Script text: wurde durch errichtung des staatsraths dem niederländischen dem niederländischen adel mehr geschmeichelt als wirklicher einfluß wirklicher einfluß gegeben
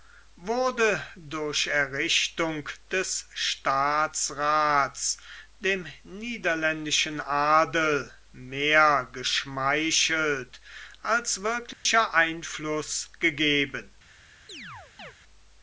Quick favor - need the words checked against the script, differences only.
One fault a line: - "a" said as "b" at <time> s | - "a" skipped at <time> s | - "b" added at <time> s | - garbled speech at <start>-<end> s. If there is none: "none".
- "dem niederländischen" skipped at 7.2 s
- "wirklicher einfluß" skipped at 13.1 s